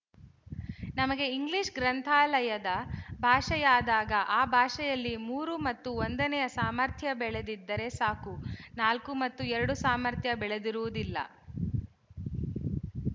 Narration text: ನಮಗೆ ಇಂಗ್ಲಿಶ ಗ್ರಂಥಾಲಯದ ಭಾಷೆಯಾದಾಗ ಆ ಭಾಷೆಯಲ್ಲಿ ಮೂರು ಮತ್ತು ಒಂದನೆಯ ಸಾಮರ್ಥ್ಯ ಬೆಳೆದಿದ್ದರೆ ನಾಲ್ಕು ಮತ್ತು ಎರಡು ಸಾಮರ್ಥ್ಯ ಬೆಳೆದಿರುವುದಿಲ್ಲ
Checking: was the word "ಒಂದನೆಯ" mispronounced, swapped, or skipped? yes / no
no